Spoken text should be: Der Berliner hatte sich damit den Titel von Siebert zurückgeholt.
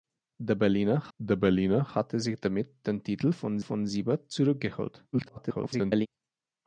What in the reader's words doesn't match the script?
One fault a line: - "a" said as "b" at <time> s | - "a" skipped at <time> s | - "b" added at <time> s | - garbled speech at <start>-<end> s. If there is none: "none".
- "der Berliner" added at 1.2 s
- "von" added at 3.6 s
- garbled speech at 5.1-6.1 s